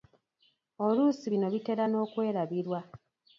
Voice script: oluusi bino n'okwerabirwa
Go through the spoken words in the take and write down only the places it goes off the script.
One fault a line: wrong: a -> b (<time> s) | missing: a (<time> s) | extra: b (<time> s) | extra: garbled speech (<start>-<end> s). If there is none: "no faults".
extra: bitera (1.5 s)